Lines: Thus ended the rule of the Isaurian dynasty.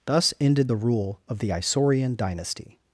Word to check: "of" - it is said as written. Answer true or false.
true